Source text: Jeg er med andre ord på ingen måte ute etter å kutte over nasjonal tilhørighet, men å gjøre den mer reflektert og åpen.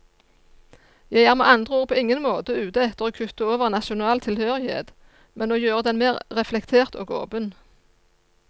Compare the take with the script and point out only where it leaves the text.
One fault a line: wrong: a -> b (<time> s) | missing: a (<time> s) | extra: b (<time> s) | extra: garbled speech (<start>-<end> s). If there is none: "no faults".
no faults